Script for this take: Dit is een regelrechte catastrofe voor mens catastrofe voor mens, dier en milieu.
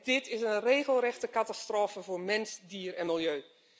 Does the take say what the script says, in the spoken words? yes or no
no